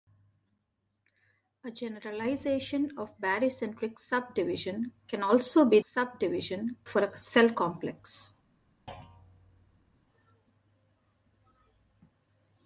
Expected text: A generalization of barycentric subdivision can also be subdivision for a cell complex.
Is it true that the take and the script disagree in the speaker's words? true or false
false